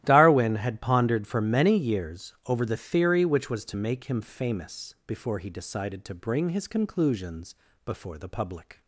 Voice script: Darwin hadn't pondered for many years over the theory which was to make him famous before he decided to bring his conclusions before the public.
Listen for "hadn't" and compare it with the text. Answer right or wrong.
wrong